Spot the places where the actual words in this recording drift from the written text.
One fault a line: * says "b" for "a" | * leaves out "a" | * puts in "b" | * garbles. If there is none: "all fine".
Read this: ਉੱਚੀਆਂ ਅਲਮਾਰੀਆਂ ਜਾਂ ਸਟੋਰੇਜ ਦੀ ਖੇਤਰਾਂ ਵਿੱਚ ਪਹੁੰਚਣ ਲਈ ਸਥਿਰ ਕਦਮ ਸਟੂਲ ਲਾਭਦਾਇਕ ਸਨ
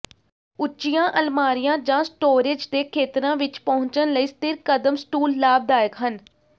* says "ਦੇ" for "ਦੀ"
* says "ਹਨ" for "ਸਨ"